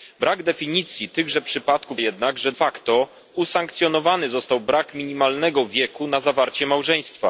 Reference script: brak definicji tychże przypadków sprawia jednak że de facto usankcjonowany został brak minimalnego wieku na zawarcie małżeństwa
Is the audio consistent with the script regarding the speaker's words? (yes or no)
no